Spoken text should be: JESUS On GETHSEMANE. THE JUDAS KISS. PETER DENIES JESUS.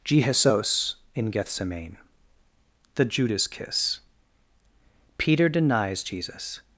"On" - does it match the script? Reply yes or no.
no